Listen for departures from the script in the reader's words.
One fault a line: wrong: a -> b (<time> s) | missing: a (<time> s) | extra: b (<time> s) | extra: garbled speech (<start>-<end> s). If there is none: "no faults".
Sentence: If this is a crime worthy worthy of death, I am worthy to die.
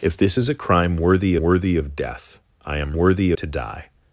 no faults